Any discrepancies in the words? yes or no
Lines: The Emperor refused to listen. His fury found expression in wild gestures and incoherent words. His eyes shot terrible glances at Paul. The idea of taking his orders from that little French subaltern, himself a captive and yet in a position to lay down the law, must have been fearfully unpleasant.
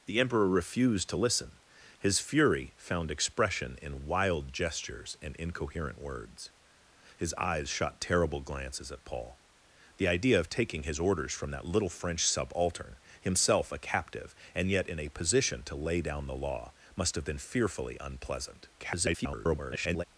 yes